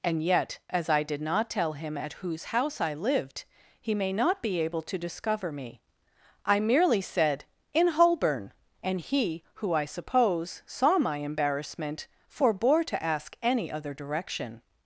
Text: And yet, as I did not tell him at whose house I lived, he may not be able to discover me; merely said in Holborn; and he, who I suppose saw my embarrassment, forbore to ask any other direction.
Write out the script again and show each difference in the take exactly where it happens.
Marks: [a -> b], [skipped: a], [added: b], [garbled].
And yet, as I did not tell him at whose house I lived, he may not be able to discover me; [added: I] merely said in Holborn; and he, who I suppose saw my embarrassment, forbore to ask any other direction.